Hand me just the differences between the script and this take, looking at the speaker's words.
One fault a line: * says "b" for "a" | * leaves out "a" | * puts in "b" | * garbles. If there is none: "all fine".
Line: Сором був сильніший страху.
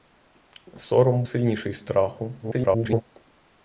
* leaves out "був"
* garbles